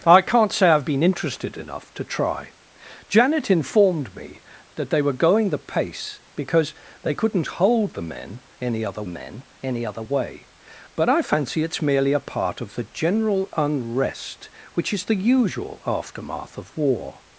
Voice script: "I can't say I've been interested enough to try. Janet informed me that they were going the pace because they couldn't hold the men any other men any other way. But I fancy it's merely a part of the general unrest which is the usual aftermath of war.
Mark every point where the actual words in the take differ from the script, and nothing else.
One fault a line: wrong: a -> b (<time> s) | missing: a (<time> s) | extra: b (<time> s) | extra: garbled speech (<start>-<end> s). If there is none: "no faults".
no faults